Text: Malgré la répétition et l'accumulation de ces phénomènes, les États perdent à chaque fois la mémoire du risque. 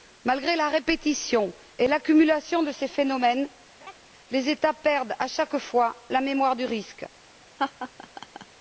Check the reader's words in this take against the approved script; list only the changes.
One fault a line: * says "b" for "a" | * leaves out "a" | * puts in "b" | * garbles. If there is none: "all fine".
all fine